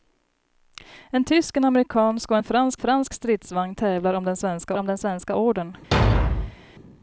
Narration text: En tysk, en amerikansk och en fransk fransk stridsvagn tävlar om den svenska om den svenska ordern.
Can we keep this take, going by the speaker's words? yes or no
yes